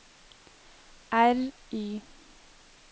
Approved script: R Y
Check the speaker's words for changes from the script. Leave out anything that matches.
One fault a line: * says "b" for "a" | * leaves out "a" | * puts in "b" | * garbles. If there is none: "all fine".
all fine